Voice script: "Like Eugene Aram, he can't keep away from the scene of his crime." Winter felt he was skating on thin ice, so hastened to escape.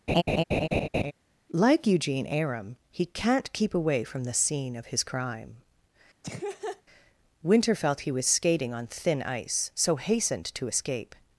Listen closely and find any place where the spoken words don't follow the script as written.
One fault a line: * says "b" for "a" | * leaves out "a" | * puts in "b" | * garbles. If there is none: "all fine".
all fine